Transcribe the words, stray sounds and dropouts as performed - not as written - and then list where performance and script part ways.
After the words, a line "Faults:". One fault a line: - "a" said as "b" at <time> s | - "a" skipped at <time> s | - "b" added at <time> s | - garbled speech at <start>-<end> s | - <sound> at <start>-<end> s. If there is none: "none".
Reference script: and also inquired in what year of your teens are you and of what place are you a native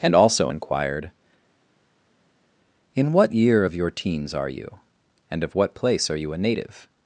and also inquired in what year of your teens are you and of what place are you a native
Faults:
none